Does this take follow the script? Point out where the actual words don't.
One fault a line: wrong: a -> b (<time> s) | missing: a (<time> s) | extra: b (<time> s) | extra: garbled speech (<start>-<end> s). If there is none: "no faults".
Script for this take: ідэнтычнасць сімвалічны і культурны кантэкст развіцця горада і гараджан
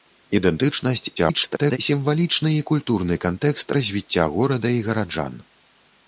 extra: garbled speech (1.2-1.8 s)